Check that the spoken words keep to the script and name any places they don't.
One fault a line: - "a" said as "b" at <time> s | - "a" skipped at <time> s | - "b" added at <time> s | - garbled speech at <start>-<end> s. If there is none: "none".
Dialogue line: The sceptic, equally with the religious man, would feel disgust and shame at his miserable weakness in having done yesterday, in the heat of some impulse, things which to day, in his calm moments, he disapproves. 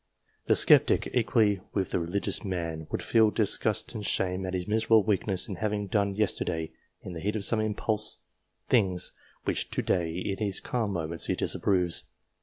none